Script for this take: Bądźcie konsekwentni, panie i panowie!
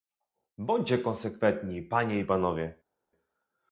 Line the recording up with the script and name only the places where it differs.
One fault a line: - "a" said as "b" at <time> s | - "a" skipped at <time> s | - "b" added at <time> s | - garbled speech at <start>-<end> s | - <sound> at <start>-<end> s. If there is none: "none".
none